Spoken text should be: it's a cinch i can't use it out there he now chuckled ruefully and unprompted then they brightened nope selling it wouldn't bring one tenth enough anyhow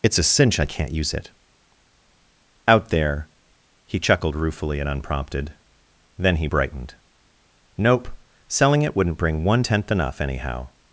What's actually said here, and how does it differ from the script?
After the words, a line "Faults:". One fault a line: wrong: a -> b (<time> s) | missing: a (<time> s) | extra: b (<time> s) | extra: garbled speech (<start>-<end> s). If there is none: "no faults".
it's a cinch i can't use it out there he chuckled ruefully and unprompted then he brightened nope selling it wouldn't bring one tenth enough anyhow
Faults:
missing: now (4.0 s)
wrong: they -> he (6.4 s)